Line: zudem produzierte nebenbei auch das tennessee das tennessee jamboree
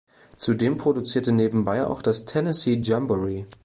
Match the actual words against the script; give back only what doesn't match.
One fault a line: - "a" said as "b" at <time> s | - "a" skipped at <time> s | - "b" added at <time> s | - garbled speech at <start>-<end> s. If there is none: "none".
- "das tennessee" skipped at 2.8 s